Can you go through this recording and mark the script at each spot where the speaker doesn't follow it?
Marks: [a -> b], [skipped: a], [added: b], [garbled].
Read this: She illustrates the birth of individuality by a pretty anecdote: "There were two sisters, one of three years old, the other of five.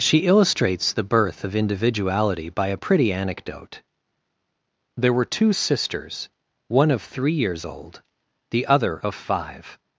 She illustrates the birth of individuality by a pretty anecdote: "There were two sisters, one of three years old, the other of five.